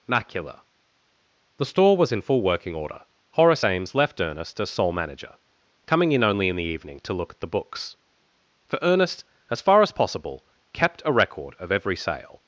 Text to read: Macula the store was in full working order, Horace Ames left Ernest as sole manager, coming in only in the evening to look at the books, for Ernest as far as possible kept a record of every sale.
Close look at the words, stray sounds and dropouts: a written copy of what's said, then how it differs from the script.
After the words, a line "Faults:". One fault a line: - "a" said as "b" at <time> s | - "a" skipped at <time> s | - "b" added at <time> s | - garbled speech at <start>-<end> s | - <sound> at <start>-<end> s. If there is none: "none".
Macula the store was in full working order, Horace Ames left Ernest as sole manager, coming in only in the evening to look at the books, for Ernest as far as possible kept a record of every sale.
Faults:
none